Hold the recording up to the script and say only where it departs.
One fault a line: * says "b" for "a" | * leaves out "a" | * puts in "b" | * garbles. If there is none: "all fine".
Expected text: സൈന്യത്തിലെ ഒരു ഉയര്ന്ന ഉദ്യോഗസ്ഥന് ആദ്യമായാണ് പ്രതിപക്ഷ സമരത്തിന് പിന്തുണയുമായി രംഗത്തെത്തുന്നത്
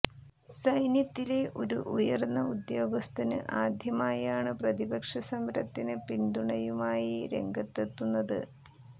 all fine